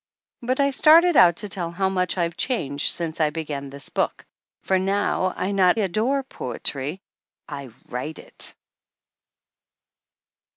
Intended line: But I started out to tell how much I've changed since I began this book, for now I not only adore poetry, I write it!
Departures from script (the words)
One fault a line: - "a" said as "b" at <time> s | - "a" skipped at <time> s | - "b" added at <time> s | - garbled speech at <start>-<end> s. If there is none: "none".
- "only" skipped at 5.8 s